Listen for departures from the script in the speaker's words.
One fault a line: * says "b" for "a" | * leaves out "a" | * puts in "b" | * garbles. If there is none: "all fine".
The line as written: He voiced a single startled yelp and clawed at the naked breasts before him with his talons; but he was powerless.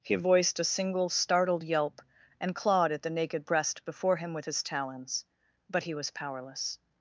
* says "breast" for "breasts"